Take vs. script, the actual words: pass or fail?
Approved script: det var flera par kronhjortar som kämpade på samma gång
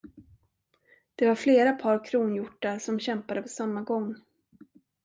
pass